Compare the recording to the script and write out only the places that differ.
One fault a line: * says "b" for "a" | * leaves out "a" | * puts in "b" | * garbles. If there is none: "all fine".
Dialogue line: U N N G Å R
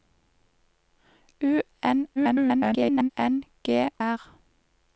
* garbles
* leaves out "Å"